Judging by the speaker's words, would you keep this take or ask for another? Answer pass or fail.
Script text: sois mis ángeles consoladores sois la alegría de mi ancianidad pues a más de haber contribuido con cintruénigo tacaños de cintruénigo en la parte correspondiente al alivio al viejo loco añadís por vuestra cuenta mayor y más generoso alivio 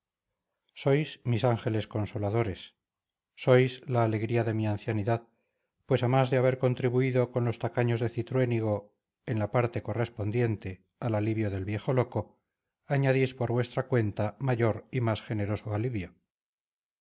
fail